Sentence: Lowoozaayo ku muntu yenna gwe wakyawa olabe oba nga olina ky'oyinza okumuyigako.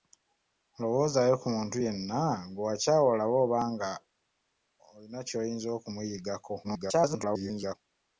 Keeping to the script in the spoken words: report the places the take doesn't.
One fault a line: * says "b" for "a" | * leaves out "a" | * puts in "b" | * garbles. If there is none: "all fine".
* garbles